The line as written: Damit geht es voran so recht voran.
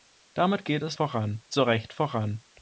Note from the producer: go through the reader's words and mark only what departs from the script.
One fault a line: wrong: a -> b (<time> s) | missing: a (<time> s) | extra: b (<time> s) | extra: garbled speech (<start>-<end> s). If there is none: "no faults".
no faults